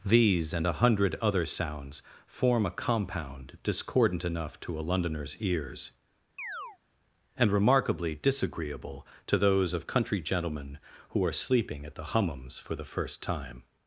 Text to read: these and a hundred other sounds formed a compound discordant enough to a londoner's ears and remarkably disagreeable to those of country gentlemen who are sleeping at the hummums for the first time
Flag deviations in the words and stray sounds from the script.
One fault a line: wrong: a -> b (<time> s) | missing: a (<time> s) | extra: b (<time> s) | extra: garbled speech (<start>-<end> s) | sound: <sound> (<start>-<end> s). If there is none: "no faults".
wrong: formed -> form (2.3 s)
sound: chirp (6.4-6.8 s)